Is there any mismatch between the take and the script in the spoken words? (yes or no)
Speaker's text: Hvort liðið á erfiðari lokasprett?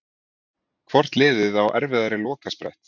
no